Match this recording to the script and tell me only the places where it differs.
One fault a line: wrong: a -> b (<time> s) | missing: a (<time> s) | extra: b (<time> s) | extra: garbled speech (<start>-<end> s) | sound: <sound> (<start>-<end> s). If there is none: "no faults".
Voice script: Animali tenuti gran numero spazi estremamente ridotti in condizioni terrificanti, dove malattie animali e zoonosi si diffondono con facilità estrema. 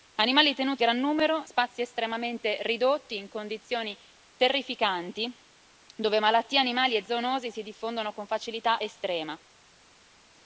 no faults